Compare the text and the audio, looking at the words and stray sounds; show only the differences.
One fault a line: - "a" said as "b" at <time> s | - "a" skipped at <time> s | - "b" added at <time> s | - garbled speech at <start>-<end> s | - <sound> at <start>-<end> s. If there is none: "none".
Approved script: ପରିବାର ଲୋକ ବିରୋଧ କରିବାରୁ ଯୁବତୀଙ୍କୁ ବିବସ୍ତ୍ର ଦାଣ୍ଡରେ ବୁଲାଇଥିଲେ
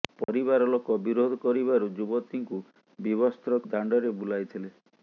- dropout at 0.2-0.3 s